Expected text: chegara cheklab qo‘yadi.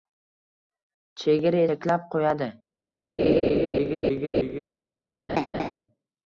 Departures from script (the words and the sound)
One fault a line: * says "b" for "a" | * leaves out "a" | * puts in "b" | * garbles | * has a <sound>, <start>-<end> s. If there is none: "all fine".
* has a laugh, 3.2-4.6 s
* has a laugh, 5.3-5.7 s